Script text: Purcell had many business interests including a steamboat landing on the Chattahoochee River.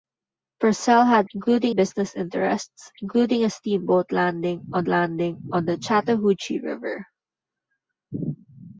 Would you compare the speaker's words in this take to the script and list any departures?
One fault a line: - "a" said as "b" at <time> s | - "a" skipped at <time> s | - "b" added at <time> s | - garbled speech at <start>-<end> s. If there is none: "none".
- "many" said as "including" at 1.3 s
- "landing on" added at 4.9 s